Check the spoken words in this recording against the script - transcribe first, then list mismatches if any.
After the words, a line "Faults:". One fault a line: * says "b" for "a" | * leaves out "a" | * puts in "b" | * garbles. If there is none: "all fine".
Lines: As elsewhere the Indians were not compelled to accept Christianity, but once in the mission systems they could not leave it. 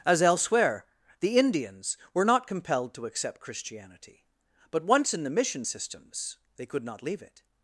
As elsewhere the Indians were not compelled to accept Christianity, but once in the mission systems they could not leave it.
Faults:
all fine